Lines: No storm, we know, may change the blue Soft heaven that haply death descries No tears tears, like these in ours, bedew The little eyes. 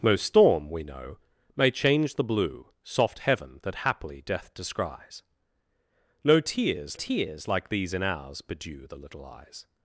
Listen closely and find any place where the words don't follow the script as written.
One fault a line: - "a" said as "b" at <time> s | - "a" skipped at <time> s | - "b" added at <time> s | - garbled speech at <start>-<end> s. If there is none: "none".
none